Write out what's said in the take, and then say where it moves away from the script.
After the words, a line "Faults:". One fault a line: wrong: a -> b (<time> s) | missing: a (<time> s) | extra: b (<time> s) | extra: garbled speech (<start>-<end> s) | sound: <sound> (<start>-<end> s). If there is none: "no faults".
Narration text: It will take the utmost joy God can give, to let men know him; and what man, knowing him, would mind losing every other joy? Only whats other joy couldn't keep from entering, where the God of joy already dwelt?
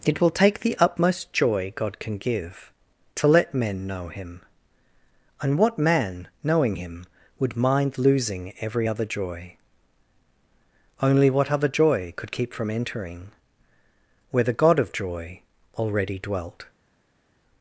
It will take the utmost joy God can give, to let men know him; and what man, knowing him, would mind losing every other joy? Only what other joy could keep from entering, where the God of joy already dwelt?
Faults:
wrong: whats -> what (11.3 s)
wrong: couldn't -> could (12.2 s)